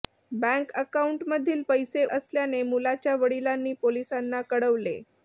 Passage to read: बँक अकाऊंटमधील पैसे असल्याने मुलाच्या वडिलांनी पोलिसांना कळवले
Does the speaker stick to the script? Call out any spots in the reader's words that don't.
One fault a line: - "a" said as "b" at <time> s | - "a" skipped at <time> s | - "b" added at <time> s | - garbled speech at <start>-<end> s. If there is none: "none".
none